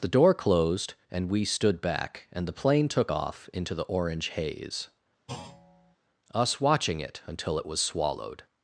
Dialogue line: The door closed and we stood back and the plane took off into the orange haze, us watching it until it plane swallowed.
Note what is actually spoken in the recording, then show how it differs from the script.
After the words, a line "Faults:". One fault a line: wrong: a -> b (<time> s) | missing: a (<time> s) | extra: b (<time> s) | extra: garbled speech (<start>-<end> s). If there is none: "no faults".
The door closed and we stood back and the plane took off into the orange haze, us watching it until it was swallowed.
Faults:
wrong: plane -> was (7.7 s)